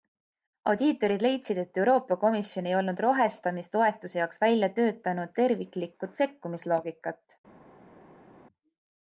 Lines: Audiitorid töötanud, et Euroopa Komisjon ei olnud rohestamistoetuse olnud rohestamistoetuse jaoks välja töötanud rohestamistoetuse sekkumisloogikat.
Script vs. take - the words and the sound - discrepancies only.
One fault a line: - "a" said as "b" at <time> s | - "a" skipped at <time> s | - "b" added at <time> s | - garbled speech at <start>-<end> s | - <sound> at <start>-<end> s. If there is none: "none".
- "töötanud" said as "leidsid" at 1.2 s
- "olnud rohestamistoetuse" skipped at 4.2 s
- "rohestamistoetuse" said as "terviklikku" at 5.4 s